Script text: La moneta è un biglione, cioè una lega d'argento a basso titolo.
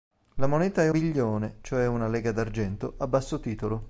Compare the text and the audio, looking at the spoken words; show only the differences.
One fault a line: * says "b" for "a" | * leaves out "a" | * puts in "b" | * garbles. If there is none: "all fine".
* leaves out "un"